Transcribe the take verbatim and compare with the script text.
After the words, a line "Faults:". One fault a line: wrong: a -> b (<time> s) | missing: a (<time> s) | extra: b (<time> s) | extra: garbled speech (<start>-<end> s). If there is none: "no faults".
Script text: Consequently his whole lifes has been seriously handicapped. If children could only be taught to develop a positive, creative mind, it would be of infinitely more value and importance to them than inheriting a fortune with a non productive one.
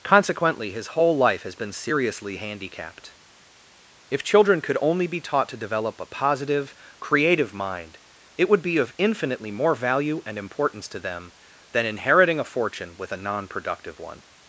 Consequently his whole life has been seriously handicapped. If children could only be taught to develop a positive, creative mind, it would be of infinitely more value and importance to them than inheriting a fortune with a non productive one.
Faults:
wrong: lifes -> life (1.1 s)